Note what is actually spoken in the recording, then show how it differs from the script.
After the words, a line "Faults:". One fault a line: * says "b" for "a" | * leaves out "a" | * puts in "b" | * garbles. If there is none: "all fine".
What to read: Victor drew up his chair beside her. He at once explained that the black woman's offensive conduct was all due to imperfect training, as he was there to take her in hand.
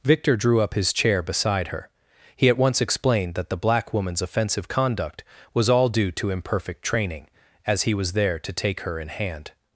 Victor drew up his chair beside her. He at once explained that the black woman's offensive conduct was all due to imperfect training, as he was there to take her in hand.
Faults:
all fine